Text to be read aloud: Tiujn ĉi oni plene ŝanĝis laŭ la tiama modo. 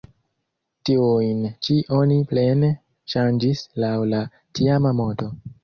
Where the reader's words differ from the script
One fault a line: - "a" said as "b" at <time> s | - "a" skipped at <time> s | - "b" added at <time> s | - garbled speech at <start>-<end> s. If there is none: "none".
none